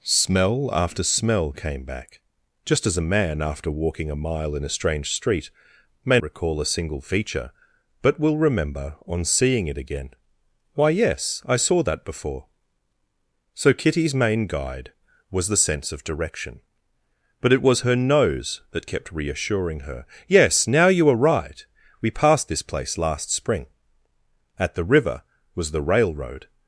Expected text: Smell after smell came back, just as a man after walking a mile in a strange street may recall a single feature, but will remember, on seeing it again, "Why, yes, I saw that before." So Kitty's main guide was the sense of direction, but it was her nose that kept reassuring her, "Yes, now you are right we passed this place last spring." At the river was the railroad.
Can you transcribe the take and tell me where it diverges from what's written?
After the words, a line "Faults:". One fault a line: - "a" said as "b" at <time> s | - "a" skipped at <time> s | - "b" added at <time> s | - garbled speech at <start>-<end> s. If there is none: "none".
Smell after smell came back, just as a man after walking a mile in a strange street may recall a single feature, but will remember, on seeing it again, "Why, yes, I saw that before." So Kitty's main guide was the sense of direction, but it was her nose that kept reassuring her, "Yes, now you are right we passed this place last spring." At the river was the railroad.
Faults:
none